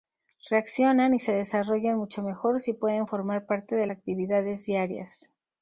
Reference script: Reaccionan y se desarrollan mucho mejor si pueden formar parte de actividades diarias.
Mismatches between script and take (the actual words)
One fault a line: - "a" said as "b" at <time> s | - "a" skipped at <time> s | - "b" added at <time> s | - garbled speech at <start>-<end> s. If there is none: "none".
none